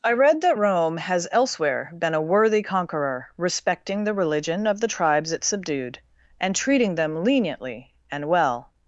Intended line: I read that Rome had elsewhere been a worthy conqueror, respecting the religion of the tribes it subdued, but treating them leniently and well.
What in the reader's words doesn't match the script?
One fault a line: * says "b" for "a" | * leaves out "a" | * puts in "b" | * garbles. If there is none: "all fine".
* says "has" for "had"
* says "and" for "but"